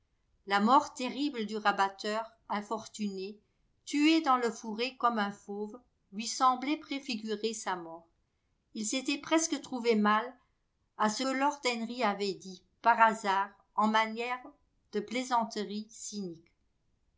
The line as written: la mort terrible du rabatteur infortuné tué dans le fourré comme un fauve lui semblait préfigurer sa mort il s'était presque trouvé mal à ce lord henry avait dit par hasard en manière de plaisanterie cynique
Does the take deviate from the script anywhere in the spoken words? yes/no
no